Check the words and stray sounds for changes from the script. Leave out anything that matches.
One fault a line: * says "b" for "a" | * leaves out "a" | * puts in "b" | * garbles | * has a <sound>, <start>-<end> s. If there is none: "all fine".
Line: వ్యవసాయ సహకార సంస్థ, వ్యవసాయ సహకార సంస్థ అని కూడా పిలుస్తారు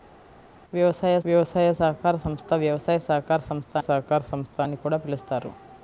* puts in "వ్యవసాయ"
* puts in "సహకార సంస్థ"